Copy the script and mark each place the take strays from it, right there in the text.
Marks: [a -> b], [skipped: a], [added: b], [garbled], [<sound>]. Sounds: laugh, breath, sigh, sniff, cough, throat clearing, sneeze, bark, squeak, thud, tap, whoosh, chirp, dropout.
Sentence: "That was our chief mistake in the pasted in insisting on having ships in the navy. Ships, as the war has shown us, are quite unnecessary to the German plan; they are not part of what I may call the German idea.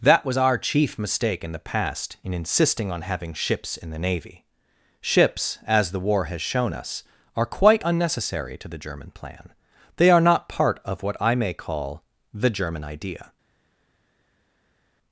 "That was our chief mistake in the [pasted -> past] in insisting on having ships in the navy. Ships, as the war has shown us, are quite unnecessary to the German plan; they are not part of what I may call the German idea.